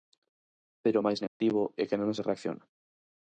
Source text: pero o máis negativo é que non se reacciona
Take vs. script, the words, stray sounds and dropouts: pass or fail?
fail